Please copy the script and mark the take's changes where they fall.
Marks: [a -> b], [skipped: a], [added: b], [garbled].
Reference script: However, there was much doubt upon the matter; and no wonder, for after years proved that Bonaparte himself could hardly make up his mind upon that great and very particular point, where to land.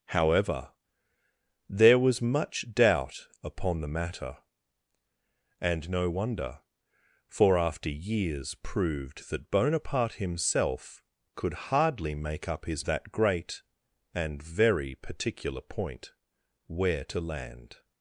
However, there was much doubt upon the matter; and no wonder, for after years proved that Bonaparte himself could hardly make up his [skipped: mind upon] that great and very particular point, where to land.